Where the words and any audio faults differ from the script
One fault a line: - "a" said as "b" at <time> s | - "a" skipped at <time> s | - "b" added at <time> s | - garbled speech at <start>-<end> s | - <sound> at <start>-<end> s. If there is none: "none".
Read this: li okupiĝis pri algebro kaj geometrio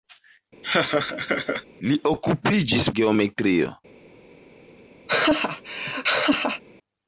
- laugh at 0.6-1.6 s
- "pri algebro kaj" skipped at 2.9 s
- laugh at 5.1-6.6 s